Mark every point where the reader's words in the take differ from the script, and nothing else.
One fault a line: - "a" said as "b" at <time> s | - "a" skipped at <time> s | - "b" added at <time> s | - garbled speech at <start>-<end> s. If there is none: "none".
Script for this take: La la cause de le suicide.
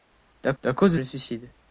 none